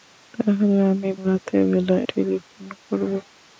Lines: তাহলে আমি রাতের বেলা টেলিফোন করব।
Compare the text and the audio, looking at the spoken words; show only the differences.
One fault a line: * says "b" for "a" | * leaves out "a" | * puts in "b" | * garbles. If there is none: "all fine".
all fine